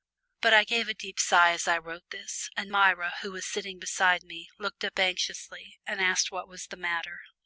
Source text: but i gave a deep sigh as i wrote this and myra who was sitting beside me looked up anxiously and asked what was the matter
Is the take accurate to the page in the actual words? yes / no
yes